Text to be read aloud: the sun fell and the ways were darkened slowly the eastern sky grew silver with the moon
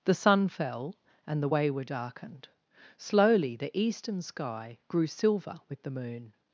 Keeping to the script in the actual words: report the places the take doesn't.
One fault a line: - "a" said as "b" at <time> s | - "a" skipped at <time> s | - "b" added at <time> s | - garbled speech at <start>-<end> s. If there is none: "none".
- "ways" said as "way" at 1.5 s